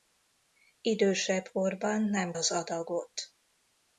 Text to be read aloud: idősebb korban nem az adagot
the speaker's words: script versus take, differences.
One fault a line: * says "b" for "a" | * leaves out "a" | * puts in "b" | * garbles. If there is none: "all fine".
all fine